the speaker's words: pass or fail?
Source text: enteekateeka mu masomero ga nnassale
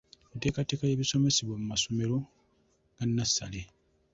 fail